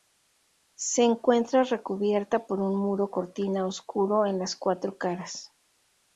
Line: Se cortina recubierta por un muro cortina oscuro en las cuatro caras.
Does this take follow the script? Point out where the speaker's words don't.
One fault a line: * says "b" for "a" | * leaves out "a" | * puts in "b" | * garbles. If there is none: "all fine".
* says "encuentra" for "cortina"